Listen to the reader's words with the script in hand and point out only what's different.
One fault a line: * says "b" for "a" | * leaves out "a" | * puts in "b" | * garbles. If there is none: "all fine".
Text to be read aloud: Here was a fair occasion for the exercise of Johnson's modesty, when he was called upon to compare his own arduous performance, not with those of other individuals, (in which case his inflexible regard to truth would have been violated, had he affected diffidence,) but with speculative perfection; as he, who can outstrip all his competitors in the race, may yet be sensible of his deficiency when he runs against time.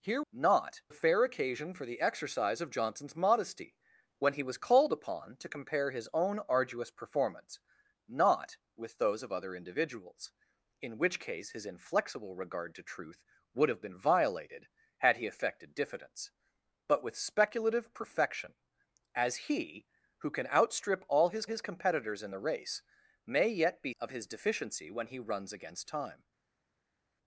* says "not" for "was"
* puts in "his"
* leaves out "sensible"